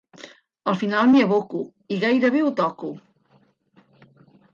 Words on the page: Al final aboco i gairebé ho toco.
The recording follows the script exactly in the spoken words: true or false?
false